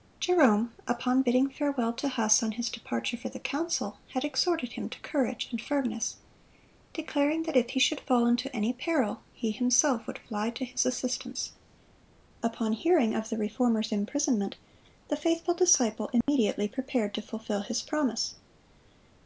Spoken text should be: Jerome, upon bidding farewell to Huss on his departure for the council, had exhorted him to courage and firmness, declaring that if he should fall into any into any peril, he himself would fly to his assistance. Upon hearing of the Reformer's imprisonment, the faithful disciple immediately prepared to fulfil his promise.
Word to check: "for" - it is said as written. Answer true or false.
true